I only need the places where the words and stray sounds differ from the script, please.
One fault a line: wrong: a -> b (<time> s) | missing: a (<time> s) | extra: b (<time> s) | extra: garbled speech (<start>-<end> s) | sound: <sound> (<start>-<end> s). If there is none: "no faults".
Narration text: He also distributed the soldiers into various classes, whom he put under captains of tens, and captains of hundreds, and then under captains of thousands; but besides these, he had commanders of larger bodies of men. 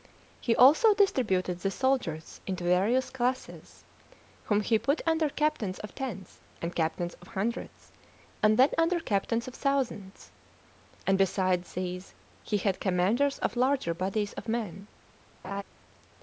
wrong: but -> and (11.1 s)
sound: laugh (15.4-15.6 s)